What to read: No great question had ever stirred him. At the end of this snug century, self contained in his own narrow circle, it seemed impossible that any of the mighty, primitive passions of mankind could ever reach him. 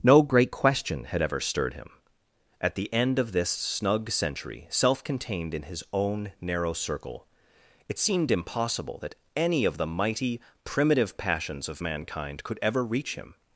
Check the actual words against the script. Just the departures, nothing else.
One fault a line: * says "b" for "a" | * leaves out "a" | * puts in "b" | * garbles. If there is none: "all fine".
all fine